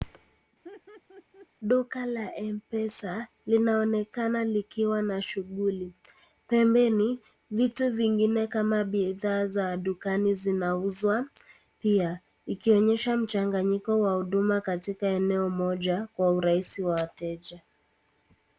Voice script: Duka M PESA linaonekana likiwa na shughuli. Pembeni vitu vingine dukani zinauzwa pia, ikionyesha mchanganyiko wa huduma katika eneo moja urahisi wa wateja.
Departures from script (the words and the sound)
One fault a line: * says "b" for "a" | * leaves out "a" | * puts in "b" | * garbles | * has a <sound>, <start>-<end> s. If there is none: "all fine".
* has a laugh, 0.6-1.5 s
* puts in "la"
* puts in "kama bidhaa za"
* puts in "kwa"